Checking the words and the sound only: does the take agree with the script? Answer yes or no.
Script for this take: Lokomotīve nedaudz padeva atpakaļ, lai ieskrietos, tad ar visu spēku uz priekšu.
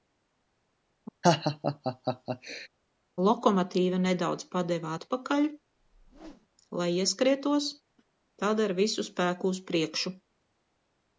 no